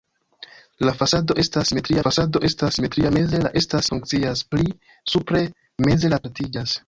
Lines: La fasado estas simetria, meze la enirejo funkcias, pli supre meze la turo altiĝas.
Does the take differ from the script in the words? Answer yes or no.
yes